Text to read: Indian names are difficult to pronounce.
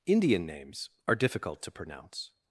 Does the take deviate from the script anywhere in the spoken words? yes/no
no